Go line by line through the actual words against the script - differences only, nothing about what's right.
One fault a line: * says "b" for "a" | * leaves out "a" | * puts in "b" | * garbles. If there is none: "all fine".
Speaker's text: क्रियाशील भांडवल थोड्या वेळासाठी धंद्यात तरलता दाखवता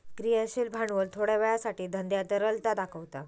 all fine